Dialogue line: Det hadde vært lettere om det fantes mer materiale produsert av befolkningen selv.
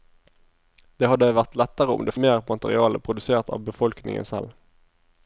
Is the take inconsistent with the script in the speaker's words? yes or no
yes